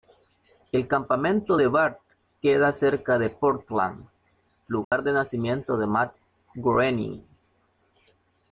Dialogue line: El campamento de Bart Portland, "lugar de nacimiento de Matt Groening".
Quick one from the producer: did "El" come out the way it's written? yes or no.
yes